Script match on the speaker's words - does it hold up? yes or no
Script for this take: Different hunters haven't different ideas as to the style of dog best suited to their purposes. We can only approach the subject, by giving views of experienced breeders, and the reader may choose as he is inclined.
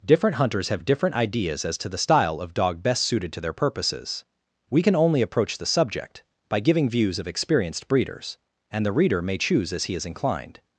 no